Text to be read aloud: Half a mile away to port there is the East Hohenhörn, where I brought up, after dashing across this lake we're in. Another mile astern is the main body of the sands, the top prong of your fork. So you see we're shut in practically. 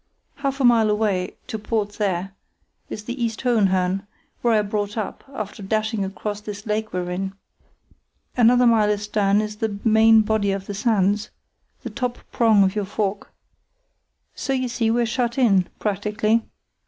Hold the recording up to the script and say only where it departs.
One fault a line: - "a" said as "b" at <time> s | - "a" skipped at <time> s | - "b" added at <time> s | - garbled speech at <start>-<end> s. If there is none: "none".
none